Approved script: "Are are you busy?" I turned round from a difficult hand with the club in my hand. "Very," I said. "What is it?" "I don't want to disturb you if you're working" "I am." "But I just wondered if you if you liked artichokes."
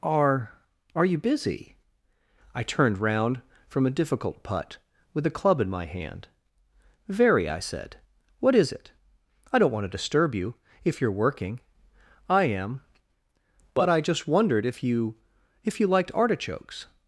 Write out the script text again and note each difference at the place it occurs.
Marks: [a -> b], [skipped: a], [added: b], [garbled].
"Are are you busy?" I turned round from a difficult [hand -> putt] with the club in my hand. "Very," I said. "What is it?" "I don't want to disturb you if you're working" "I am." "But I just wondered if you if you liked artichokes."